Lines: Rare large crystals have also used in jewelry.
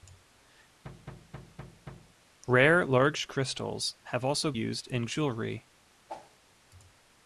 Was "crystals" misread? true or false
false